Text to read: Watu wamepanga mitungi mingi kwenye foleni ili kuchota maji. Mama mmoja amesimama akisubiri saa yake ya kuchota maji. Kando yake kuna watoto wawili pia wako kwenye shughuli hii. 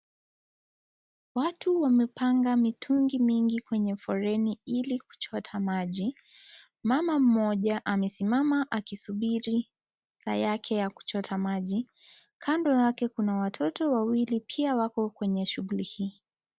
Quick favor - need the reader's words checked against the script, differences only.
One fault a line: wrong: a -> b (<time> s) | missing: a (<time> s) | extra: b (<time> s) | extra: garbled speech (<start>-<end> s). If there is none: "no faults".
no faults